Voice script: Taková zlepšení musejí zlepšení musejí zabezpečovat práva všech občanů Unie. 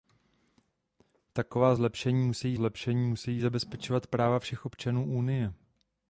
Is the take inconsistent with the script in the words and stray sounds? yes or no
no